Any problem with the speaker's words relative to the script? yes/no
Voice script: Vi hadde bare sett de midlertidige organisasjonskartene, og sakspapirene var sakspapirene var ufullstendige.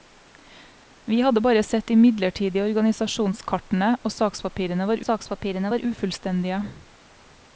no